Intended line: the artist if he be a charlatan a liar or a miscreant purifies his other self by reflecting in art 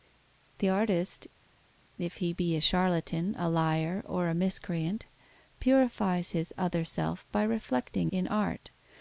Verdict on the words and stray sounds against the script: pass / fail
pass